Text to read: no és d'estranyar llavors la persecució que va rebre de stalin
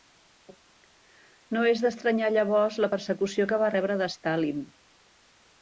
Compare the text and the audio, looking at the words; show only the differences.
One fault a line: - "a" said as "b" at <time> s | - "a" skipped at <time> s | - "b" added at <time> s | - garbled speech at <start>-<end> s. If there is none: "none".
none